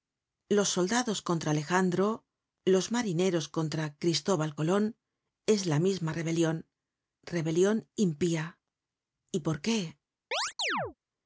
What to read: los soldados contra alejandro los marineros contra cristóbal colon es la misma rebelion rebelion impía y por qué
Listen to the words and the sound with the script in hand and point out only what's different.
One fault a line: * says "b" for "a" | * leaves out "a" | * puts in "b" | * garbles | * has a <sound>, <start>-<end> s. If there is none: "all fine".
* has a chirp, 10.3-10.9 s